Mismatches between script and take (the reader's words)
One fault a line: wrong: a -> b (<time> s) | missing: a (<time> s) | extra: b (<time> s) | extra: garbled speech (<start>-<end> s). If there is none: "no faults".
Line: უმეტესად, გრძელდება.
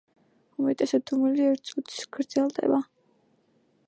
extra: დუმილი ერთ წუთს (1.1 s)